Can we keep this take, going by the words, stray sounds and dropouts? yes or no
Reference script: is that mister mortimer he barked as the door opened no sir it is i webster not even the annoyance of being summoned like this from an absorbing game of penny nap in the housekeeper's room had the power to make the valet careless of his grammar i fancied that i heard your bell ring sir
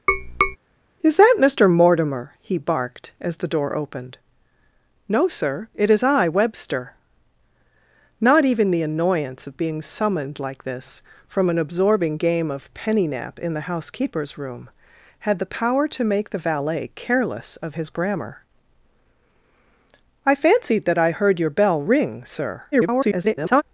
no